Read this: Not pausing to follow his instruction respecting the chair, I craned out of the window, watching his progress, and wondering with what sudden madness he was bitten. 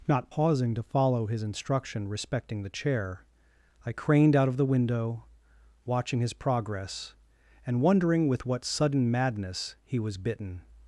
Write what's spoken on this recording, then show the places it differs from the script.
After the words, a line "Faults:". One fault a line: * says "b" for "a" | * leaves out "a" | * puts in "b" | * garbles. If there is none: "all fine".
Not pausing to follow his instruction respecting the chair, I craned out of the window, watching his progress, and wondering with what sudden madness he was bitten.
Faults:
all fine